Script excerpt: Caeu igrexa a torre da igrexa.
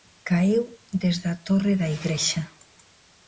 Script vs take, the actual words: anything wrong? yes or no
yes